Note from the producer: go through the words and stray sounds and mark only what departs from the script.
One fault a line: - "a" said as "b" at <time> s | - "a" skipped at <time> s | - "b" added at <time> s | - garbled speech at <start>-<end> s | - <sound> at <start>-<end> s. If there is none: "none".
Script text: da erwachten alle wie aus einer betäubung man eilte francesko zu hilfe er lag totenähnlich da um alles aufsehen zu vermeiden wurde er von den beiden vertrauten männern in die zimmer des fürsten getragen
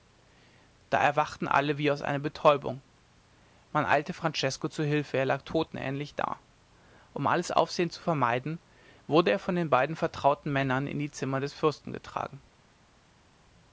none